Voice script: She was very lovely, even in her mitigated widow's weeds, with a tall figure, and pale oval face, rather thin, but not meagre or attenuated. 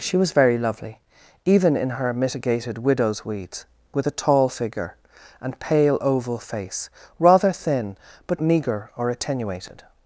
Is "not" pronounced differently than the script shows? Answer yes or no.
yes